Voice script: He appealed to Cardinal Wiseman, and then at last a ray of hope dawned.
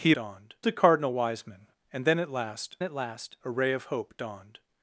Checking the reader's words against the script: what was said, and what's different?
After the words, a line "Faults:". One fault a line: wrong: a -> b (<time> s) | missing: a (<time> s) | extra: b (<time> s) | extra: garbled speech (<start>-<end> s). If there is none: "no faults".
He dawned to Cardinal Wiseman, and then at last at last a ray of hope dawned.
Faults:
wrong: appealed -> dawned (0.1 s)
extra: at last (2.8 s)